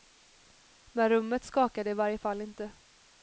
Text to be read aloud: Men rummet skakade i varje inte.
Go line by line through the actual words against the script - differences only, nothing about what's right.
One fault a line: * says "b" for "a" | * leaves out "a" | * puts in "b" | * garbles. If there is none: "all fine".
* puts in "fall"